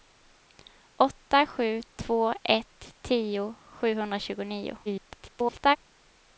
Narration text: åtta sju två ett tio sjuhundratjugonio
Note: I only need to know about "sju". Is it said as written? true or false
true